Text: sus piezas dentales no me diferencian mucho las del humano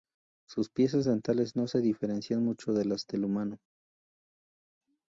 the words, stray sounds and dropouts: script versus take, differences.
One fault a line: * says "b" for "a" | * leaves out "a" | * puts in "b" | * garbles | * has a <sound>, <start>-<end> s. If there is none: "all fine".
* says "se" for "me"
* puts in "de"